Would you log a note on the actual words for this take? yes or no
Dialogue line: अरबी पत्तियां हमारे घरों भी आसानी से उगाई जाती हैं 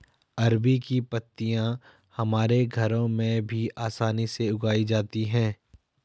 yes